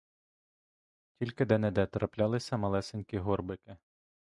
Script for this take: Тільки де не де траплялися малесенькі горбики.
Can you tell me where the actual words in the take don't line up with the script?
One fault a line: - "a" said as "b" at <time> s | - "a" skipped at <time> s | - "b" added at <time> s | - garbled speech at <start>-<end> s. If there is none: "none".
none